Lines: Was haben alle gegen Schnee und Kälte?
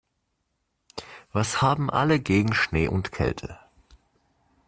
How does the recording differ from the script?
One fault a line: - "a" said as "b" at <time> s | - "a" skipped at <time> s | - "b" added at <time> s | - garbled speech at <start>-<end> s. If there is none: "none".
none